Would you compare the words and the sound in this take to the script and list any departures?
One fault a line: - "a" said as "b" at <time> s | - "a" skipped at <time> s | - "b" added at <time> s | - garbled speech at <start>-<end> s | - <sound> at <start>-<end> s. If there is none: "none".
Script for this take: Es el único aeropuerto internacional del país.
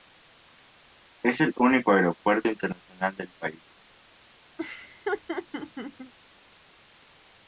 - laugh at 4.6-6.1 s